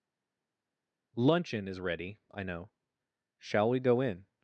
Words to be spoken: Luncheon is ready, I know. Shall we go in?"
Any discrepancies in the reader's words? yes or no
no